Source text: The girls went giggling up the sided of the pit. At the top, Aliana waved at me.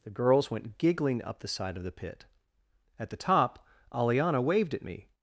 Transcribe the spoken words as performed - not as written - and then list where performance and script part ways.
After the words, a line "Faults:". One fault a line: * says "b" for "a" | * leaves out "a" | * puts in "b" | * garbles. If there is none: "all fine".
The girls went giggling up the side of the pit. At the top, Aliana waved at me.
Faults:
* says "side" for "sided"